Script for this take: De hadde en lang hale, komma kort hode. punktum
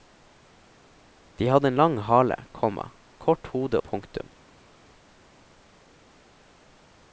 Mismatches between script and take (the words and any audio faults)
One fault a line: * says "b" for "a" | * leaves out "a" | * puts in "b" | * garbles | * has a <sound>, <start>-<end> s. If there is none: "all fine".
all fine